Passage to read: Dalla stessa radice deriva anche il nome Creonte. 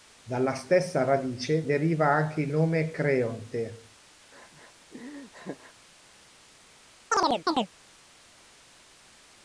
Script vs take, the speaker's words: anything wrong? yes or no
no